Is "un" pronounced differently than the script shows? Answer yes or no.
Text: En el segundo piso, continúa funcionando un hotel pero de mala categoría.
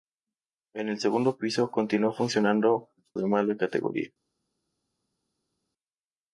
yes